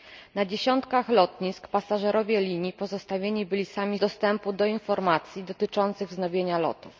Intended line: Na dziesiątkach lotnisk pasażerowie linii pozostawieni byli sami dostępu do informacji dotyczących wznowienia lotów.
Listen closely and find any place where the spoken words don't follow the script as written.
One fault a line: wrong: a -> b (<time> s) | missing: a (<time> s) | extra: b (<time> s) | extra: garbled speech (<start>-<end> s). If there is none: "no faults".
no faults